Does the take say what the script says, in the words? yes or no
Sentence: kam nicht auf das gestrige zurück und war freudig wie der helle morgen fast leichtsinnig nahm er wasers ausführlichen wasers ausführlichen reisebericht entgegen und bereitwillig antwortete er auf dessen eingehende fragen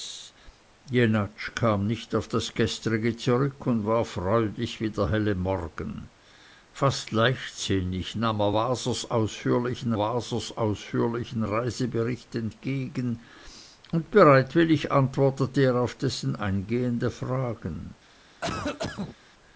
yes